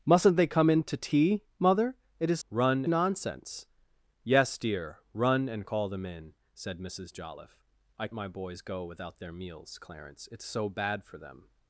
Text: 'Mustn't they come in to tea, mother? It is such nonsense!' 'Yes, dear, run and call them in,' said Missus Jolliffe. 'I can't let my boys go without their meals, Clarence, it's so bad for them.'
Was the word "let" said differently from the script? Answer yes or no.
yes